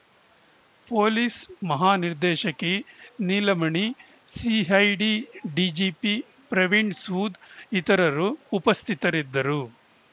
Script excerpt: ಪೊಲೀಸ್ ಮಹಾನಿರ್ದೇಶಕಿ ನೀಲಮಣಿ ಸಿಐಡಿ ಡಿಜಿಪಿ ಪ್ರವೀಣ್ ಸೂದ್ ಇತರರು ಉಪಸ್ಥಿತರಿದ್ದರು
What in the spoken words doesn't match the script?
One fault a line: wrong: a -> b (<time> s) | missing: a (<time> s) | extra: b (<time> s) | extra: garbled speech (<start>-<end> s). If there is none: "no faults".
no faults